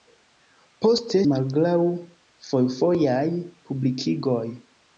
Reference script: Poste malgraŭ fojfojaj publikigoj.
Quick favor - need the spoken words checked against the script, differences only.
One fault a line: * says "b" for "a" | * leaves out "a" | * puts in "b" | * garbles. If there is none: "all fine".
all fine